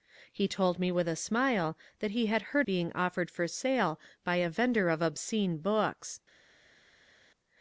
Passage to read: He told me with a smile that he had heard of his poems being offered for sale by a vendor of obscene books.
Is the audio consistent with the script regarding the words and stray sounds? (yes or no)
no